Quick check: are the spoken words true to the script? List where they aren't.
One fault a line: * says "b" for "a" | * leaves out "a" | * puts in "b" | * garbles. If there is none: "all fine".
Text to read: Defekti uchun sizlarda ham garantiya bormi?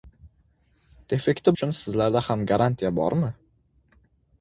all fine